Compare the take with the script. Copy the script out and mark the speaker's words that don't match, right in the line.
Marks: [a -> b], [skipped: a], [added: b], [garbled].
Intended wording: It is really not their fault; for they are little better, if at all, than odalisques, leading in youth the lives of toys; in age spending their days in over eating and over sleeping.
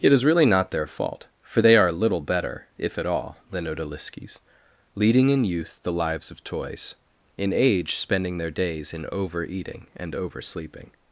It is really not their fault; for they are little better, if at all, than odalisques, leading in youth the lives of toys; in age spending their days in over eating and over sleeping.